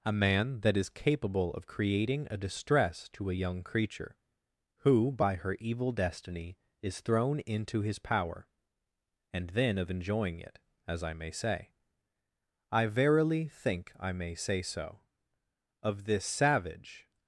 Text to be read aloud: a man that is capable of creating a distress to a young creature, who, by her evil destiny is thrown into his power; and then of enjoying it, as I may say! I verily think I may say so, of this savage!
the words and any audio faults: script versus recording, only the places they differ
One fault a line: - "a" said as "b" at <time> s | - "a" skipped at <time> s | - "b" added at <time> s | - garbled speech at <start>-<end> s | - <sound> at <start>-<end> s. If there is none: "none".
none